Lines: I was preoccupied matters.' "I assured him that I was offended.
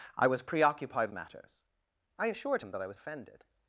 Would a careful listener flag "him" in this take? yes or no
no